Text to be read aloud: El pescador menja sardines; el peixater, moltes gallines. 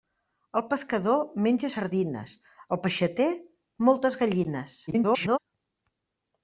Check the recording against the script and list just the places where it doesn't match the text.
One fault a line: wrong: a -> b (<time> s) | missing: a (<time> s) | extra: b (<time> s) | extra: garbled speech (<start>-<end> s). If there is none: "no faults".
extra: garbled speech (4.9-5.4 s)